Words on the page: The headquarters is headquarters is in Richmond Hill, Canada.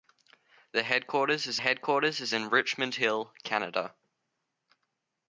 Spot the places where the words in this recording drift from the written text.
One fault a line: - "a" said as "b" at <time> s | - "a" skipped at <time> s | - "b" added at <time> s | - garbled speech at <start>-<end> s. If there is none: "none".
none